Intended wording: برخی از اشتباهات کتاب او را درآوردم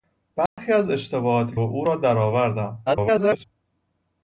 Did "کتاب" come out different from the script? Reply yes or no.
yes